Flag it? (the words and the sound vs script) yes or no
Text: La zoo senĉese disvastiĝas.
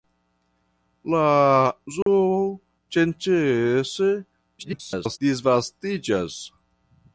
yes